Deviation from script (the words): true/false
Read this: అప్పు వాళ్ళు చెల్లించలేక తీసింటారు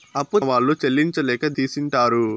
false